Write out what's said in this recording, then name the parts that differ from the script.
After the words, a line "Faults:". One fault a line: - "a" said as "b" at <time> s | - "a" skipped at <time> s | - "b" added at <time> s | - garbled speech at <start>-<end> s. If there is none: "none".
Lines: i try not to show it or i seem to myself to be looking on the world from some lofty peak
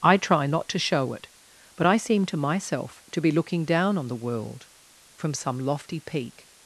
i try not to show it but i seem to myself to be looking down on the world from some lofty peak
Faults:
- "or" said as "but" at 1.8 s
- "down" added at 3.6 s